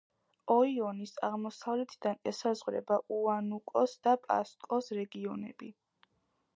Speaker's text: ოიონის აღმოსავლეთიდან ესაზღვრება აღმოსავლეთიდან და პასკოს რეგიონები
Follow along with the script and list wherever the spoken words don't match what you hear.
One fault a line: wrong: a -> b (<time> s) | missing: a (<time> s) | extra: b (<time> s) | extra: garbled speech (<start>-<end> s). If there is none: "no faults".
wrong: აღმოსავლეთიდან -> უანუკოს (3.2 s)